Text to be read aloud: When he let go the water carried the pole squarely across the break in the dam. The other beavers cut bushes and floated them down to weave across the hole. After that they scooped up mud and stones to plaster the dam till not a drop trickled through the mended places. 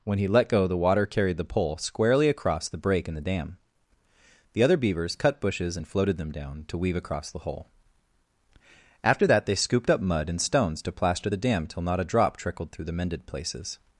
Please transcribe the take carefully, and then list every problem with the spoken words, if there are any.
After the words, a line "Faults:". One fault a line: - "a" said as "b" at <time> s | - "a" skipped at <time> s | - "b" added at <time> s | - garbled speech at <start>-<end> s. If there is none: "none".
When he let go the water carried the pole squarely across the break in the dam. The other beavers cut bushes and floated them down to weave across the hole. After that they scooped up mud and stones to plaster the dam till not a drop trickled through the mended places.
Faults:
none